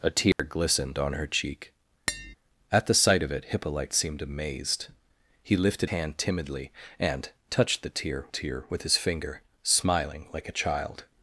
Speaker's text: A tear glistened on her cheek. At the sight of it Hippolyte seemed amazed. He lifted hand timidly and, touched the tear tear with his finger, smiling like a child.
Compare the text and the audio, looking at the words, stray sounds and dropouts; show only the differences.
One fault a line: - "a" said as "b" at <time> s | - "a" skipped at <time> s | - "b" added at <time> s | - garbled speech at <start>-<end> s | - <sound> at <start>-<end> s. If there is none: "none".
- dropout at 0.3-0.4 s
- tap at 2.1-2.3 s